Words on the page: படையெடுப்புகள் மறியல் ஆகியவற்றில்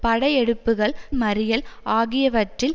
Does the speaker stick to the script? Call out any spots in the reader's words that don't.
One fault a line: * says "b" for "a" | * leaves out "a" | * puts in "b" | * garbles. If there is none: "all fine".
all fine